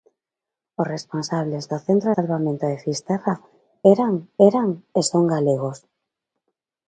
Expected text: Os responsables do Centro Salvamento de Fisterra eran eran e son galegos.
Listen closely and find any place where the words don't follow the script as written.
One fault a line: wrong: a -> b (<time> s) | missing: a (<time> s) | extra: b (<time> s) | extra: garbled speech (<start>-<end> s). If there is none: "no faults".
no faults